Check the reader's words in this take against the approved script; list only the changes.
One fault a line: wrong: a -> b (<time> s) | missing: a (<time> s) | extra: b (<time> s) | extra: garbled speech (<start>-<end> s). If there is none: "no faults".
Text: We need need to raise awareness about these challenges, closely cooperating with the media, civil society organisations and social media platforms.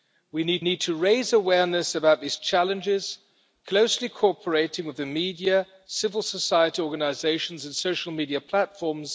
no faults